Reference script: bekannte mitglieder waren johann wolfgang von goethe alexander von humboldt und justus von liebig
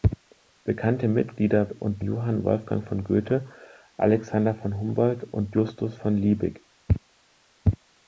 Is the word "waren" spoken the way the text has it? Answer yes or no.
no